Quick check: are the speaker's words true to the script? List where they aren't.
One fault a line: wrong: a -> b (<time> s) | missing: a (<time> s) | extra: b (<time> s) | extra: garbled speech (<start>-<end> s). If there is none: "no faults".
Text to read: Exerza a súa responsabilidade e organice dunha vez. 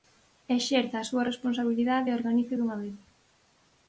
no faults